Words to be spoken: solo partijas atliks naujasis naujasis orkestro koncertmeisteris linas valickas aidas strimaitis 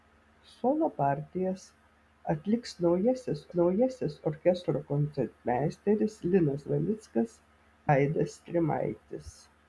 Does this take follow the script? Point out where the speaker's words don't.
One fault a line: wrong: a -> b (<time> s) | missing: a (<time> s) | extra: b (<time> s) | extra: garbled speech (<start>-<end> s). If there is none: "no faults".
no faults